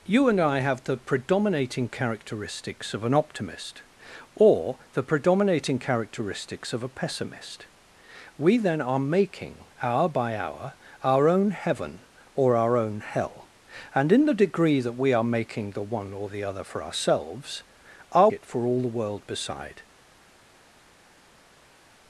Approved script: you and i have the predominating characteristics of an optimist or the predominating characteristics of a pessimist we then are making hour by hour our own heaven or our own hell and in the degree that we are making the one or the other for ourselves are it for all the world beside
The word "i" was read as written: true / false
true